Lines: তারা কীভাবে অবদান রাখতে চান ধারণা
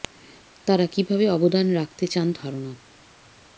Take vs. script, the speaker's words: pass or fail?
pass